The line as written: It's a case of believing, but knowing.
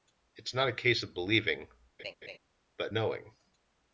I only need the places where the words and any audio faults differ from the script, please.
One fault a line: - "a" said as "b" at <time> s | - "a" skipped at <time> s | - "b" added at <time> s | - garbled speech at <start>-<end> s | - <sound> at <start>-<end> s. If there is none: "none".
- "not" added at 0.6 s
- laugh at 2.0-2.4 s